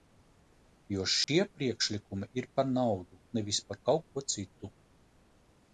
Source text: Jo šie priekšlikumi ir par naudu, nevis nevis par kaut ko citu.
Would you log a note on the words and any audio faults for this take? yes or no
yes